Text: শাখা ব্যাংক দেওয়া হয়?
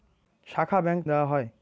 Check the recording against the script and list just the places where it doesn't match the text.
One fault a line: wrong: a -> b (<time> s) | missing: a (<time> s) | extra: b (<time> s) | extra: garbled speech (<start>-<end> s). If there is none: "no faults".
no faults